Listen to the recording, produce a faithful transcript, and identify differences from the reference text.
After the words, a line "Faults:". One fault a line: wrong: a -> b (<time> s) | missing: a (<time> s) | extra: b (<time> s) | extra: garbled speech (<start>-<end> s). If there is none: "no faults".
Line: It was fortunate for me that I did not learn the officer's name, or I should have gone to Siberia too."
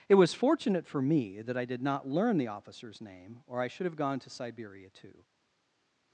It was fortunate for me that I did not learn the officer's name, or I should have gone to Siberia too."
Faults:
no faults